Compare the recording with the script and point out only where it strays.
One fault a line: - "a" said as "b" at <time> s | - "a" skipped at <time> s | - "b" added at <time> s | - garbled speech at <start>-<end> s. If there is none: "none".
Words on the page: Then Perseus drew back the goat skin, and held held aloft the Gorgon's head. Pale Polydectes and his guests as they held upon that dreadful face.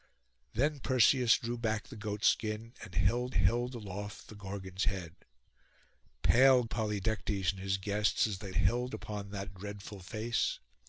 none